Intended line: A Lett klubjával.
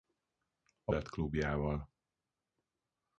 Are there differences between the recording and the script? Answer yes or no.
no